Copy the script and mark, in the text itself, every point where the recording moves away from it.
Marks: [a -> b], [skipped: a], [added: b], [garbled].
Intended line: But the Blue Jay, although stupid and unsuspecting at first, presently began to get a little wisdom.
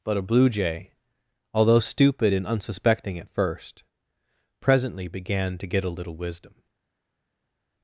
But [the -> a] Blue Jay, although stupid and unsuspecting at first, presently began to get a little wisdom.